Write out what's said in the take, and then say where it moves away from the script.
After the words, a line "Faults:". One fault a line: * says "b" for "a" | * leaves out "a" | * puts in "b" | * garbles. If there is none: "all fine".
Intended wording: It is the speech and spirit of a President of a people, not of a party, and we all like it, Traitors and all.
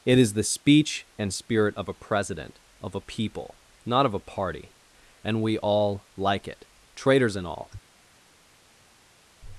It is the speech and spirit of a President of a people, not of a party, and we all like it, Traitors and all.
Faults:
all fine